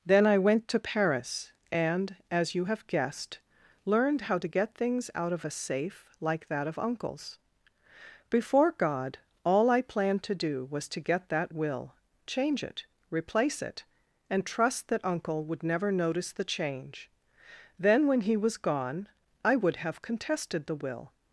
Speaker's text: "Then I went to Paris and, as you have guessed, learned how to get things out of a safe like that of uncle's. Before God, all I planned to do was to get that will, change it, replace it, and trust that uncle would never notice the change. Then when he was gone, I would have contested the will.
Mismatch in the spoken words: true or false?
false